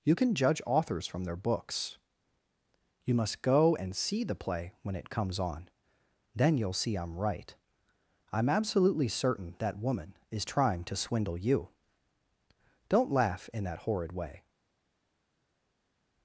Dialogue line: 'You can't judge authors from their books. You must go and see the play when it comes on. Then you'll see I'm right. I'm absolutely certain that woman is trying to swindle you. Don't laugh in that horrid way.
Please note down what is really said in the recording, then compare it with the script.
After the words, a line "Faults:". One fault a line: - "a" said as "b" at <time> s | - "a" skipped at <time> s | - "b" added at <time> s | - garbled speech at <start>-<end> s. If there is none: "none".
'You can judge authors from their books. You must go and see the play when it comes on. Then you'll see I'm right. I'm absolutely certain that woman is trying to swindle you. Don't laugh in that horrid way.
Faults:
- "can't" said as "can" at 0.1 s